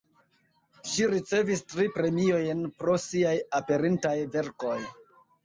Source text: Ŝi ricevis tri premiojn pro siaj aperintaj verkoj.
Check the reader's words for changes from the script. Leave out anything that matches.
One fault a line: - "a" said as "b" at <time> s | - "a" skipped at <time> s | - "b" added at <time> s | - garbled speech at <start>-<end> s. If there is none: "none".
none